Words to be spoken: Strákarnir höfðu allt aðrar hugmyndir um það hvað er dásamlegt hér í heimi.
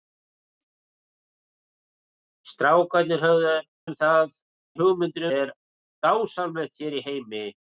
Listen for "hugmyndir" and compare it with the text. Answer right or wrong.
wrong